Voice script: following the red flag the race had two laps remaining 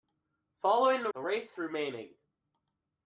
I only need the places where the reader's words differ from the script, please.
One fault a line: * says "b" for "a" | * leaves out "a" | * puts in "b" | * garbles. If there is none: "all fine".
* leaves out "red flag"
* leaves out "had two laps"